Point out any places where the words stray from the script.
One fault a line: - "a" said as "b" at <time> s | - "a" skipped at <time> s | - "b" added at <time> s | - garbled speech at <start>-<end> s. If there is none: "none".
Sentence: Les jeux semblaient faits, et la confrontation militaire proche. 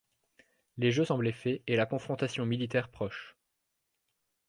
none